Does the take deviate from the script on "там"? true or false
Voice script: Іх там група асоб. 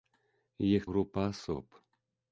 true